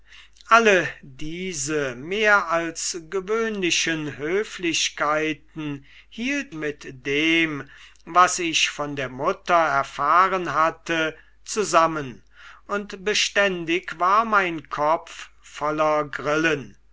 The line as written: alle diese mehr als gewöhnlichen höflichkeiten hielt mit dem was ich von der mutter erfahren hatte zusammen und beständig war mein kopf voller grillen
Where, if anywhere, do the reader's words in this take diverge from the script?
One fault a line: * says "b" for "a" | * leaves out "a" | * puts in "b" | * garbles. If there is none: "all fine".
all fine